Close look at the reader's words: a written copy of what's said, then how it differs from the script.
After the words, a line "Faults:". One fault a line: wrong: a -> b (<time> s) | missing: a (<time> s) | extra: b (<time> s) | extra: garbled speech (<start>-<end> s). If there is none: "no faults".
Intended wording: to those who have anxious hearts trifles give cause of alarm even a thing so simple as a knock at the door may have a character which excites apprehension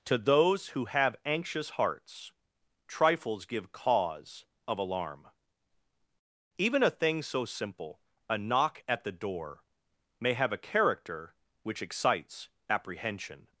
to those who have anxious hearts trifles give cause of alarm even a thing so simple a knock at the door may have a character which excites apprehension
Faults:
missing: as (8.0 s)